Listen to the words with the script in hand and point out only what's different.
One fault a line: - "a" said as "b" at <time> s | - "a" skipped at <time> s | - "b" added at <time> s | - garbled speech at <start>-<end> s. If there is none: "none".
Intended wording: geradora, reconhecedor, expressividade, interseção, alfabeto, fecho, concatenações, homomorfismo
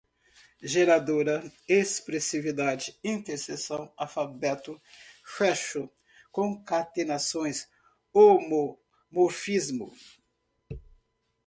- "reconhecedor" skipped at 1.4 s